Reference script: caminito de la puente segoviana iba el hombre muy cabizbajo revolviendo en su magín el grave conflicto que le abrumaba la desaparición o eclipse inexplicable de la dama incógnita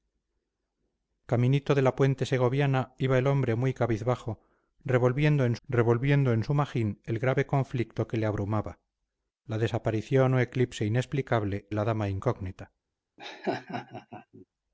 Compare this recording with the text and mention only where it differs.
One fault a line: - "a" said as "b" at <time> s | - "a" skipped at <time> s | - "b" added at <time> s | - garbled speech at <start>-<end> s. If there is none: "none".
- "revolviendo en" added at 5.6 s
- "de" skipped at 11.7 s